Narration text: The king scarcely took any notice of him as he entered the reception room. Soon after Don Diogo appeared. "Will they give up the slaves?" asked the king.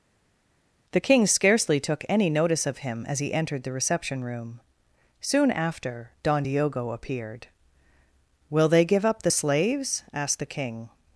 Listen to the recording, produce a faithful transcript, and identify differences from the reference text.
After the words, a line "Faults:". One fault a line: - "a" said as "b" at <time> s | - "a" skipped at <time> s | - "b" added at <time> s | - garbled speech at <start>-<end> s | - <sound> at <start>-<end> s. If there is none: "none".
The king scarcely took any notice of him as he entered the reception room. Soon after Don Diogo appeared. "Will they give up the slaves?" asked the king.
Faults:
none